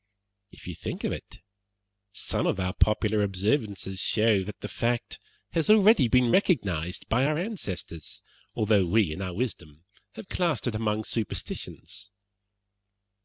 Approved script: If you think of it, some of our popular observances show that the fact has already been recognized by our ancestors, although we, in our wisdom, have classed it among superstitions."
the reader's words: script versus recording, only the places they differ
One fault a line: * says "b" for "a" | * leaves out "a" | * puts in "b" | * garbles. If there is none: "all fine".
all fine